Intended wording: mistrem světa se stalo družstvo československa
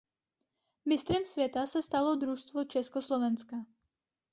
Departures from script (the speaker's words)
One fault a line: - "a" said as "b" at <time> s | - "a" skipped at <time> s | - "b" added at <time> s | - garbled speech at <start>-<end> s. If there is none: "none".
none